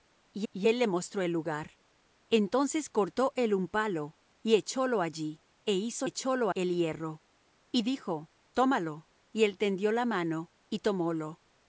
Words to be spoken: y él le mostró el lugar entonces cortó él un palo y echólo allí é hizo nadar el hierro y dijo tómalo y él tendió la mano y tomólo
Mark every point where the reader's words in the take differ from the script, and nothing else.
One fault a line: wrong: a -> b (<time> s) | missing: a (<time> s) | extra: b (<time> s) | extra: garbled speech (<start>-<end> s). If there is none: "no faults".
extra: y (0.5 s)
wrong: nadar -> echólo (6.0 s)